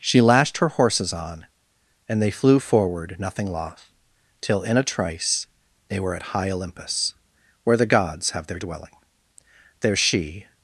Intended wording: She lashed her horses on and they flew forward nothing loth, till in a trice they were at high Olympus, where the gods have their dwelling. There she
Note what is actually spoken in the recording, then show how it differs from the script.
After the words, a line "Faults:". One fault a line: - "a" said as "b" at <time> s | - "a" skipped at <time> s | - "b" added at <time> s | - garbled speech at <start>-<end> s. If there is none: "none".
She lashed her horses on and they flew forward nothing loth, till in a trice they were at high Olympus, where the gods have their dwelling. There she
Faults:
none